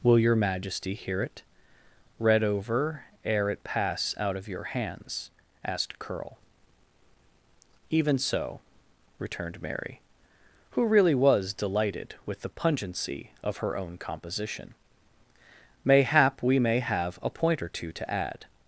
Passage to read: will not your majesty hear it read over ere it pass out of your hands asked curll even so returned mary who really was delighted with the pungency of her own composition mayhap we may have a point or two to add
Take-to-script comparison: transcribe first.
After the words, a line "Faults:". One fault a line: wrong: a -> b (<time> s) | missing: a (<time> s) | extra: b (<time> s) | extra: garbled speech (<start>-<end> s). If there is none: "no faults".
will your majesty hear it read over ere it pass out of your hands asked curll even so returned mary who really was delighted with the pungency of her own composition mayhap we may have a point or two to add
Faults:
missing: not (0.2 s)